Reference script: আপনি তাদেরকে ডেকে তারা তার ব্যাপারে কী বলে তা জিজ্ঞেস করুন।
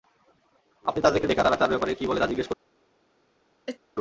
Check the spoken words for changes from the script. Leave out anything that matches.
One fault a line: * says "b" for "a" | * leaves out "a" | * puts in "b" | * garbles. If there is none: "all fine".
all fine